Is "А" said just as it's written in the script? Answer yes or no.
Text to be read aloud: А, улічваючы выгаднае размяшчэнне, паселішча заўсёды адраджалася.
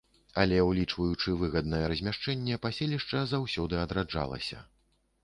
no